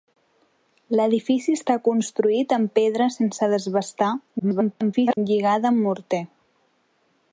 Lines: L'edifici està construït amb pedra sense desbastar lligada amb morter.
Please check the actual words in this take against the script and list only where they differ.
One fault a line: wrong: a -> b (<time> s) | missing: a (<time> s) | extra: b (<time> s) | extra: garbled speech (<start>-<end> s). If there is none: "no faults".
extra: garbled speech (4.4-5.2 s)